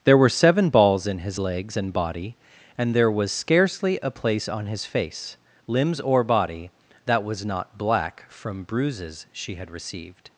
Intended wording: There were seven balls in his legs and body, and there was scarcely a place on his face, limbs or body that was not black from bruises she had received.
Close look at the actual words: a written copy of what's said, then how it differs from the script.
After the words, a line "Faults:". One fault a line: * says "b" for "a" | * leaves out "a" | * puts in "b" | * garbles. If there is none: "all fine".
There were seven balls in his legs and body, and there was scarcely a place on his face, limbs or body that was not black from bruises she had received.
Faults:
all fine